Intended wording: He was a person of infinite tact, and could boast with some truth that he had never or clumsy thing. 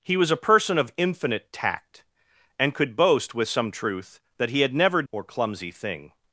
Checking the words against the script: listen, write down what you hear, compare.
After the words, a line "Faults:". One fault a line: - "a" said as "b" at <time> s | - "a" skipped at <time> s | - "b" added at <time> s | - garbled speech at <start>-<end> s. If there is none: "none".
He was a person of infinite tact, and could boast with some truth that he had never or clumsy thing.
Faults:
none